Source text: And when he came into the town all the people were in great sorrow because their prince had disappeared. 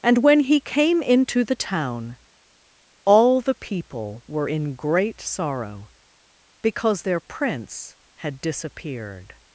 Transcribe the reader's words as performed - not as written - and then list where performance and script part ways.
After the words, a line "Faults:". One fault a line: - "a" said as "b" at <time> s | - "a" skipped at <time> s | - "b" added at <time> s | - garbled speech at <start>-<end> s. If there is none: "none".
And when he came into the town all the people were in great sorrow because their prince had disappeared.
Faults:
none